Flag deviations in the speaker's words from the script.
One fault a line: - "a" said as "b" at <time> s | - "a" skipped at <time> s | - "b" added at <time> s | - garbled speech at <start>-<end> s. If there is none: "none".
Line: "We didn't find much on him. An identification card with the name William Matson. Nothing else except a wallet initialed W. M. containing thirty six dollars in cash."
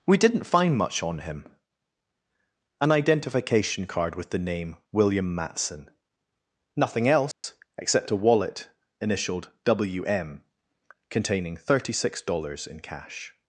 none